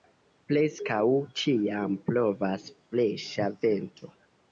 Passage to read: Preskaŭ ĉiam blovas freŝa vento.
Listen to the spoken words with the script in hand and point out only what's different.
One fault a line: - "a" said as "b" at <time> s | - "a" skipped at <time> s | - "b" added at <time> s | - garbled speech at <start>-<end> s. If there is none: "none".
none